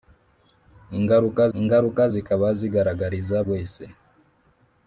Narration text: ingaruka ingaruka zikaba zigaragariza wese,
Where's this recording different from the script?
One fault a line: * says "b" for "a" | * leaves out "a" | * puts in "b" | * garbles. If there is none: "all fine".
all fine